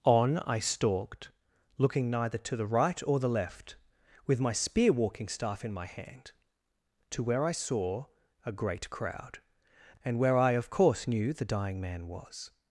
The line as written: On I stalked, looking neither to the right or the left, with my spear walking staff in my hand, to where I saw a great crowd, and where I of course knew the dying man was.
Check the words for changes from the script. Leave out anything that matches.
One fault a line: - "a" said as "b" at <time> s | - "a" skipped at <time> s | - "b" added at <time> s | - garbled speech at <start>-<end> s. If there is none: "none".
none